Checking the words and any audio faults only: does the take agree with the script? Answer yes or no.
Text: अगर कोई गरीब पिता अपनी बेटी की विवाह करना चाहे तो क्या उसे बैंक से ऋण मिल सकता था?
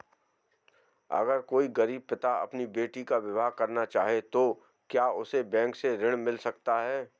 no